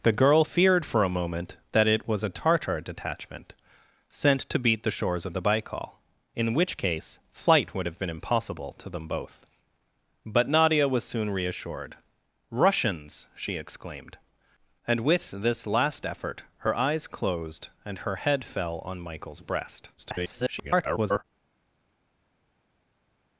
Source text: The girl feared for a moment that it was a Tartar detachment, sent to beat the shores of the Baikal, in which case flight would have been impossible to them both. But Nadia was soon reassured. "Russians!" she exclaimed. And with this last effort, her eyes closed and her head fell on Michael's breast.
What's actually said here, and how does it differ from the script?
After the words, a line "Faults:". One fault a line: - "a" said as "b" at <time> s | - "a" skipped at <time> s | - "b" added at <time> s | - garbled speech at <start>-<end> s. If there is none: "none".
The girl feared for a moment that it was a Tartar detachment, sent to beat the shores of the Baikal, in which case flight would have been impossible to them both. But Nadia was soon reassured. "Russians!" she exclaimed. And with this last effort, her eyes closed and her head fell on Michael's breast. [garbled]
Faults:
- garbled speech at 20.0-21.2 s